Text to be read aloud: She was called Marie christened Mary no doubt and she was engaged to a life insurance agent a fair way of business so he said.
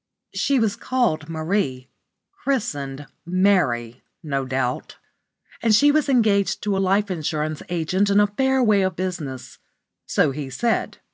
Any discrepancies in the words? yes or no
yes